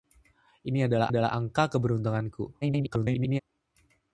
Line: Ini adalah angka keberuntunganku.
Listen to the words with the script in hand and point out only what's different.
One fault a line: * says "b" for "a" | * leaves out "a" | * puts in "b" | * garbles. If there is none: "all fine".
* puts in "adalah"
* garbles